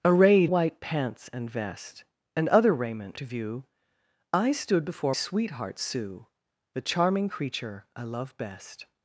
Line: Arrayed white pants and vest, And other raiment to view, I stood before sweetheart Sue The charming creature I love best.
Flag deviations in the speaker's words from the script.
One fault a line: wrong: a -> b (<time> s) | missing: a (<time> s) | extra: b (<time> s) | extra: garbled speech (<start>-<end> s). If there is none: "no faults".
no faults